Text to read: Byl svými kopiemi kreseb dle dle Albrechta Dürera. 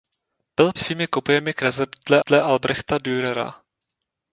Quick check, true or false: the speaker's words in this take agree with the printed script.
true